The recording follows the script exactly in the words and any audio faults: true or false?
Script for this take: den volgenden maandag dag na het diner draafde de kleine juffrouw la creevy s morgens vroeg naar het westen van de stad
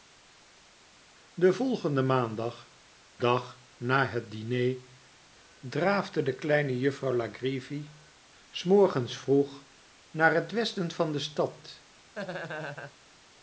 false